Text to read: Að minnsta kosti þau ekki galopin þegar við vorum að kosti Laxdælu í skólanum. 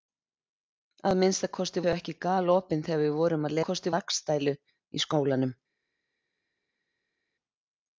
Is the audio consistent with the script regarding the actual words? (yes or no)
yes